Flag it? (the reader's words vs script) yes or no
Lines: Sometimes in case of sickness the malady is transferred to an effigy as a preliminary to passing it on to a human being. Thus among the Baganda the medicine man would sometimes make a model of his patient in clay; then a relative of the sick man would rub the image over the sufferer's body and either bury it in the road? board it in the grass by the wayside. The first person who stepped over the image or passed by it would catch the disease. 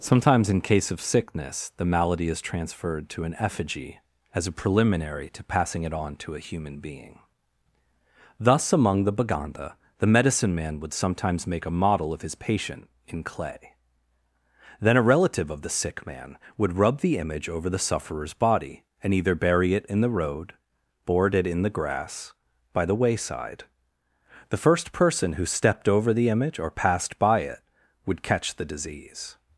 no